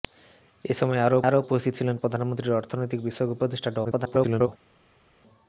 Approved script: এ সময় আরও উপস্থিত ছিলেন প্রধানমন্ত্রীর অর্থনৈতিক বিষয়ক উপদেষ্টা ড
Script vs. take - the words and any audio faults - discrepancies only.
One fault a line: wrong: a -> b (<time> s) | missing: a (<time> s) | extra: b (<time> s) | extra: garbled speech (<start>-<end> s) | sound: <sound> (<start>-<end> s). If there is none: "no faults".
extra: আরও (1.2 s)
extra: garbled speech (3.8-4.5 s)